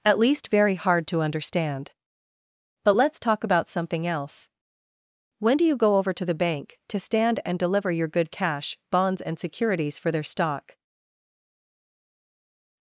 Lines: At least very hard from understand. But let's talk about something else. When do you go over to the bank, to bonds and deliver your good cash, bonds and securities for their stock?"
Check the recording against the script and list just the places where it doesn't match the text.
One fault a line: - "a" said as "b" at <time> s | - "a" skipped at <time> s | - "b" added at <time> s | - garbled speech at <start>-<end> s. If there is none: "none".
- "from" said as "to" at 1.1 s
- "bonds" said as "stand" at 7.0 s